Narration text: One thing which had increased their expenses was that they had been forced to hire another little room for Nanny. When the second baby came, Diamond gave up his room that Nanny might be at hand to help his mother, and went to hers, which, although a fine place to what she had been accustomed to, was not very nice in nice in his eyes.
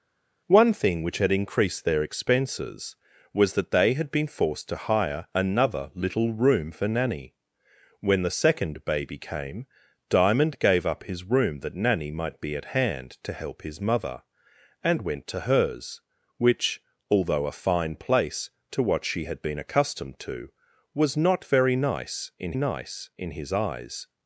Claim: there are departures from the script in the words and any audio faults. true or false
false